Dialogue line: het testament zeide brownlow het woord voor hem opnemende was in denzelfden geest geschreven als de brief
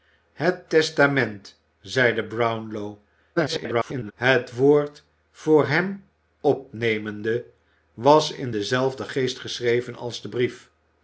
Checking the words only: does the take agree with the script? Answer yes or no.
no